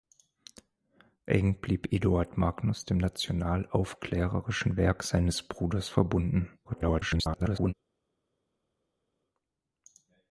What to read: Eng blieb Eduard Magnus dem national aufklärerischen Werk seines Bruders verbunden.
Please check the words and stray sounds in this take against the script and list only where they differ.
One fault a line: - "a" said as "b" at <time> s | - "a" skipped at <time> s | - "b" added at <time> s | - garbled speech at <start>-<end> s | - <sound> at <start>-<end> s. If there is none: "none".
- garbled speech at 6.6-7.7 s